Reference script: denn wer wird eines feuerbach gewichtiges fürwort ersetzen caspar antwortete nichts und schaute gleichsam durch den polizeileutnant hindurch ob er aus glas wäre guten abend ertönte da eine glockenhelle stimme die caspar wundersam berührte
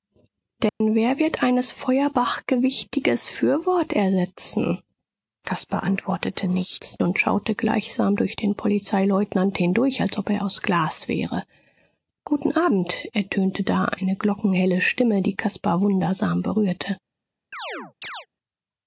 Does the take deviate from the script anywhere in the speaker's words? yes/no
yes